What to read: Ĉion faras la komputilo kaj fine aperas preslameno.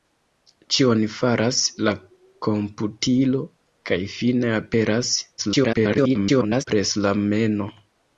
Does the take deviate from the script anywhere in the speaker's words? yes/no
yes